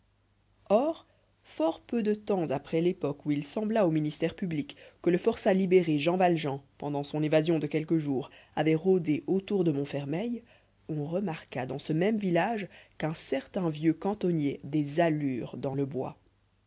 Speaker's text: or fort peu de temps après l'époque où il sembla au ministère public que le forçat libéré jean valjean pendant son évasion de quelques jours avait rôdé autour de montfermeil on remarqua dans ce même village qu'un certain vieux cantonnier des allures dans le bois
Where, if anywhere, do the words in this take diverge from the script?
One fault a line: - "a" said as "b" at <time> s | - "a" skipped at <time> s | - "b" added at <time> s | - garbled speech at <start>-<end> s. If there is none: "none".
none